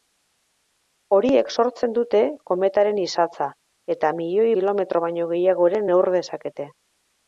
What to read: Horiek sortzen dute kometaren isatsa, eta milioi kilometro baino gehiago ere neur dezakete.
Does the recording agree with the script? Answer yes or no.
yes